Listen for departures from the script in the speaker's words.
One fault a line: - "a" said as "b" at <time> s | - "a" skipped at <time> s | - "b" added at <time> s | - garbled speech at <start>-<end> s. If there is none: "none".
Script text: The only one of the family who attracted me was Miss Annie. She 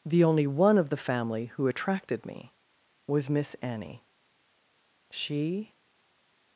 none